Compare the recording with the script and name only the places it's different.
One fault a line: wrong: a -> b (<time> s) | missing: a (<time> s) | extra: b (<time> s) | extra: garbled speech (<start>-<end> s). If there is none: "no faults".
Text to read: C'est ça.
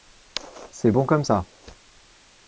extra: bon comme (0.9 s)